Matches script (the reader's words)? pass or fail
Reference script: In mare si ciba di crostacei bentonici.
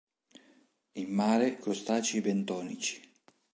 fail